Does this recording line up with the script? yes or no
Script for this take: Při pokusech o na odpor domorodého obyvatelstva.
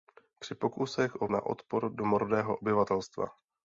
yes